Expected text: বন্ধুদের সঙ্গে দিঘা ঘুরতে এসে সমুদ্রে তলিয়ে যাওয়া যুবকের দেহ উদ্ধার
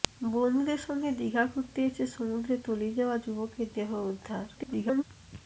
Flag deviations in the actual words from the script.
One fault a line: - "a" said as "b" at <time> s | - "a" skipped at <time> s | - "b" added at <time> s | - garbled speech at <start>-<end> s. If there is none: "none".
- garbled speech at 4.5-5.0 s